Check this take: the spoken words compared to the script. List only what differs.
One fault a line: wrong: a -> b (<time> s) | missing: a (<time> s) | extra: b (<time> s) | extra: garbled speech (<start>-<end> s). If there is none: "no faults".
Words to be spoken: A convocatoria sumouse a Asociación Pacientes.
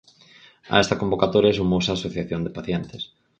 extra: esta (0.8 s)
extra: de (2.4 s)